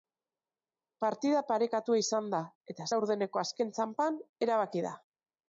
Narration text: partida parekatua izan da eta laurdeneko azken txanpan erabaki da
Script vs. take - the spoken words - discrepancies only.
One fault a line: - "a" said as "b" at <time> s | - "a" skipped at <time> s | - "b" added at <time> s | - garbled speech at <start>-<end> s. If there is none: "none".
none